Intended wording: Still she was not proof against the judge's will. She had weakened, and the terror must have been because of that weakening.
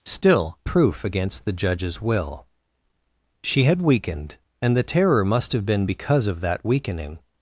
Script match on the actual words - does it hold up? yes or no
no